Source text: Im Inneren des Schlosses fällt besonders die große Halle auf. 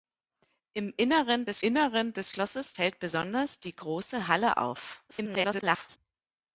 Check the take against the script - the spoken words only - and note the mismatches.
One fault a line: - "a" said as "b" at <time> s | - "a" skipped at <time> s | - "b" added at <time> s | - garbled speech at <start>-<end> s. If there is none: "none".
- "Inneren des" added at 1.6 s
- garbled speech at 5.1-6.0 s